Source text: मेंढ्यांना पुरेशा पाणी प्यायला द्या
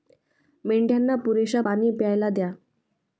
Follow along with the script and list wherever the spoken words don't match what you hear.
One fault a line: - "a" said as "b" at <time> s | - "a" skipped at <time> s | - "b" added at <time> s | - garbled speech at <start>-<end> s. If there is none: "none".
none